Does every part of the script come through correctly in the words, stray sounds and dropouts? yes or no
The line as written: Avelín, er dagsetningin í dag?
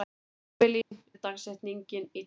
no